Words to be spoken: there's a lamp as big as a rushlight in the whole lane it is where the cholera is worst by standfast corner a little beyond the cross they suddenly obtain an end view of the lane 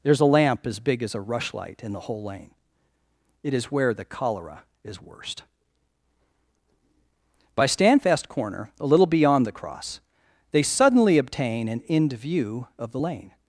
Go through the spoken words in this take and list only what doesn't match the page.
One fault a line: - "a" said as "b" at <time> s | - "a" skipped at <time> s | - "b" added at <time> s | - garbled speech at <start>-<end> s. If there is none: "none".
none